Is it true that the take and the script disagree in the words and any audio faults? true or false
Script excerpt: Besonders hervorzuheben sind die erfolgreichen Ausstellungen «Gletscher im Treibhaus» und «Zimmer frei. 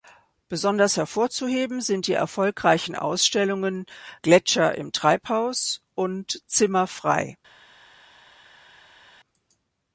false